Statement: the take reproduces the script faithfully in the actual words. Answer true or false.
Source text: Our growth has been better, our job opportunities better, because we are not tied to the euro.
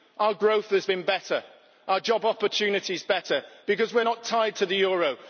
true